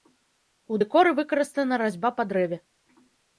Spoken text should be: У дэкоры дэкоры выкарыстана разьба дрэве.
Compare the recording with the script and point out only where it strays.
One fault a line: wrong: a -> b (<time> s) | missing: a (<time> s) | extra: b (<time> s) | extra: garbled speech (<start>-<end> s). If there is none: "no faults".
missing: дэкоры (1.1 s)
extra: па (2.2 s)